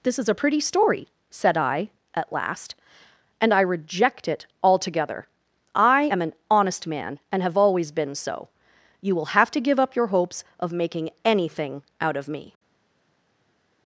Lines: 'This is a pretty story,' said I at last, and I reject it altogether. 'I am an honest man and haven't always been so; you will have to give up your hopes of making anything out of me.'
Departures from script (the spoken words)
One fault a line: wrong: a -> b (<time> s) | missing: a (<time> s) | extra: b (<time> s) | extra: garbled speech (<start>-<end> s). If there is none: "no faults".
wrong: haven't -> have (7.4 s)